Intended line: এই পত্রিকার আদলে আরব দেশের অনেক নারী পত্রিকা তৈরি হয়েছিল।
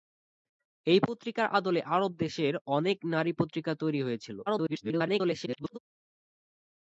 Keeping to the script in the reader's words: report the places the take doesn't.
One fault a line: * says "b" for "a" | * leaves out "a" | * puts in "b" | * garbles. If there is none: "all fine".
* garbles